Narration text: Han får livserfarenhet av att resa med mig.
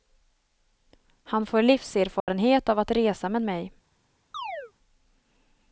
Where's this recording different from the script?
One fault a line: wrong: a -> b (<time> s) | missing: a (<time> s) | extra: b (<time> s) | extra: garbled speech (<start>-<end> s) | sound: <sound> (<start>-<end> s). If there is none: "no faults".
sound: dropout (2.2-2.3 s)
sound: chirp (4.3-4.7 s)